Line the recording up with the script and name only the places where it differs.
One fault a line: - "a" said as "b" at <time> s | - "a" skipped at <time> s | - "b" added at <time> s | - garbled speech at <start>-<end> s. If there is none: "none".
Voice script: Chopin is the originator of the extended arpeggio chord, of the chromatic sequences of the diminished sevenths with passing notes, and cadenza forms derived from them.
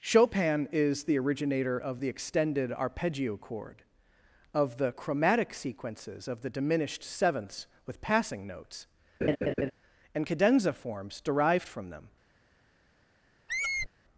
none